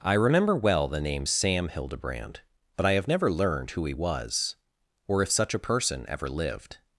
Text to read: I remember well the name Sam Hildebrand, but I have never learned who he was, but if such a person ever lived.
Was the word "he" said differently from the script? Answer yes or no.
no